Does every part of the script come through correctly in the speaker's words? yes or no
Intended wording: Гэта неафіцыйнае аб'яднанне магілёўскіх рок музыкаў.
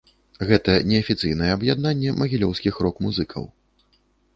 yes